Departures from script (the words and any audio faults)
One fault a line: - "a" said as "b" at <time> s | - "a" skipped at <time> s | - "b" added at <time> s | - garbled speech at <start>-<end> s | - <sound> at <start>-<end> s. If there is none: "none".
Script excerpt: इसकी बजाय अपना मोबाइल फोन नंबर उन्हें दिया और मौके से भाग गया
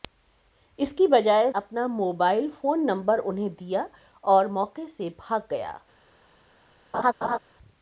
- laugh at 6.9-7.4 s